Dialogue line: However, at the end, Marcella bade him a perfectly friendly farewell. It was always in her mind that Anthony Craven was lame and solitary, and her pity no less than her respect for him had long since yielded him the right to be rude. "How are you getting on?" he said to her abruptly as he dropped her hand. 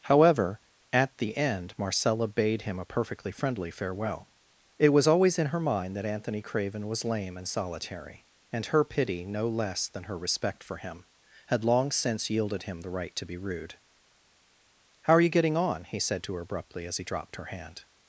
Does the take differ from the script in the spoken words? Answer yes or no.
no